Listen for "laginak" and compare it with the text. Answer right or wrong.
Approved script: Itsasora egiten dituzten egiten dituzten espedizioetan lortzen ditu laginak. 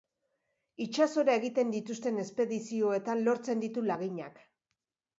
right